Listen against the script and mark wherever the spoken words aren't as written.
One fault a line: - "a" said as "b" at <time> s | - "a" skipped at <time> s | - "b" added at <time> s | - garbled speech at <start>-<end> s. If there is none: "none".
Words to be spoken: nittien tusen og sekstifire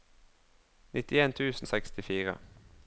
- "og" skipped at 1.7 s